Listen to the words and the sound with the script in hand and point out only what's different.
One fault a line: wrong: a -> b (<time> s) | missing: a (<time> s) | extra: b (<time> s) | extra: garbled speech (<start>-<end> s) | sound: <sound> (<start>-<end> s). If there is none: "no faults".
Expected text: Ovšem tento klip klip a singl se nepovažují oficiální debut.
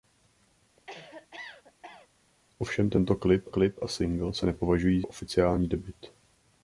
sound: cough (0.8-2.1 s)